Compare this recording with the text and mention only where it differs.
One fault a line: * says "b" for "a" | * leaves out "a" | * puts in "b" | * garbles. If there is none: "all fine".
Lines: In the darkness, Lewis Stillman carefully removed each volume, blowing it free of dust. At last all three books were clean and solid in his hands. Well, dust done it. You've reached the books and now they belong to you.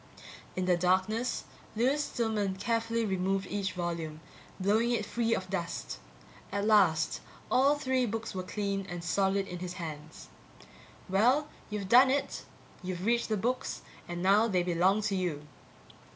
* says "you've" for "dust"